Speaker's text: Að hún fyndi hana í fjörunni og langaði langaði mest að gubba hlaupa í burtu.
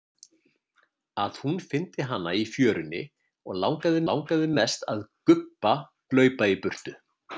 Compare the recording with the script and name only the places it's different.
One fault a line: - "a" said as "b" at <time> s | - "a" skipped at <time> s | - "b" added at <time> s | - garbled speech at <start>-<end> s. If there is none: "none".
none